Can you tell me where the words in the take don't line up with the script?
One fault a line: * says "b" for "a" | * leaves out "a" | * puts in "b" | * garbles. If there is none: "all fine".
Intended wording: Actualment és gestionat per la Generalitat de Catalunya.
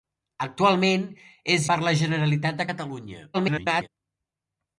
* leaves out "gestionat"
* garbles